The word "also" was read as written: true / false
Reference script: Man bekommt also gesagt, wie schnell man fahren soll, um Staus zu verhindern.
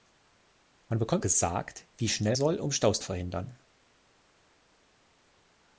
false